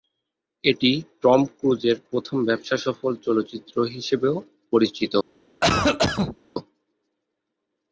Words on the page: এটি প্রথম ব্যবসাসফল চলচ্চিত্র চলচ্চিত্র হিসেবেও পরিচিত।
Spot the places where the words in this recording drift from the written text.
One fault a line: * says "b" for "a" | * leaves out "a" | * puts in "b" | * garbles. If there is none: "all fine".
* puts in "টম ক্রুজের"
* leaves out "চলচ্চিত্র"